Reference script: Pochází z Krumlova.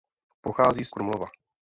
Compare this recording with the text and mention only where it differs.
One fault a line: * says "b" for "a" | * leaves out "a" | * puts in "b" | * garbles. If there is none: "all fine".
all fine